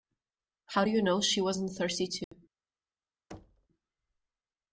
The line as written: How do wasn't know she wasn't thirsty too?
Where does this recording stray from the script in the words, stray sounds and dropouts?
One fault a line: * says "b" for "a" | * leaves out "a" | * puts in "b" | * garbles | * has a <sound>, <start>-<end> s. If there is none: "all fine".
* says "you" for "wasn't"
* has a dropout, 2.2-2.3 s
* has a thud, 3.3-3.7 s